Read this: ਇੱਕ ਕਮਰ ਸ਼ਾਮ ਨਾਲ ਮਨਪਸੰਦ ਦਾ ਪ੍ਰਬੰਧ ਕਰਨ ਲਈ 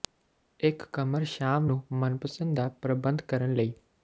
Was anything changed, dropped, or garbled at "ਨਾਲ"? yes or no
yes